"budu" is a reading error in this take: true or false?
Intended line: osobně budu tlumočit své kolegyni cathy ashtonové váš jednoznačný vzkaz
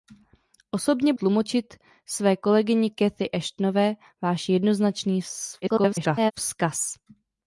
true